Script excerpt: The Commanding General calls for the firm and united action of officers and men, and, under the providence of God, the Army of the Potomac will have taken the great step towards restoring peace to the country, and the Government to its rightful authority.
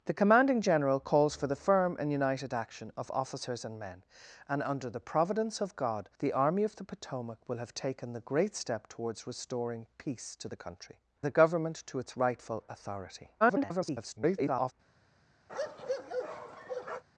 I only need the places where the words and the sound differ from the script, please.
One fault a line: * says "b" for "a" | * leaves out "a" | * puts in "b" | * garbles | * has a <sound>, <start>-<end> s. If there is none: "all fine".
* leaves out "and"
* garbles
* has a bark, 15.5-17.0 s